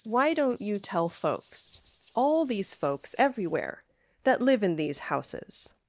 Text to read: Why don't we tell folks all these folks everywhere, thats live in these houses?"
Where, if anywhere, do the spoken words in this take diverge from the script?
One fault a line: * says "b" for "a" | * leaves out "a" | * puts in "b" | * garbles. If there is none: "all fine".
* says "you" for "we"
* says "that" for "thats"